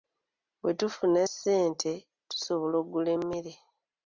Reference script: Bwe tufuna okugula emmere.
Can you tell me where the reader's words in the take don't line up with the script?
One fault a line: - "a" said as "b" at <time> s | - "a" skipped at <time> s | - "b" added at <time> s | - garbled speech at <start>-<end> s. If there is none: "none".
- "ssente tusobola" added at 1.3 s